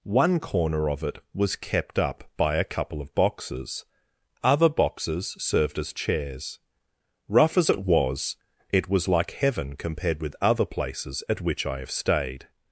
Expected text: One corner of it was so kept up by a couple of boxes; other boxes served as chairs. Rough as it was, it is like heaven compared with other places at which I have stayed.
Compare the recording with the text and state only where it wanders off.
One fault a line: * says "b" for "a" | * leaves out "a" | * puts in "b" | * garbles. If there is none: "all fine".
* leaves out "so"
* says "was" for "is"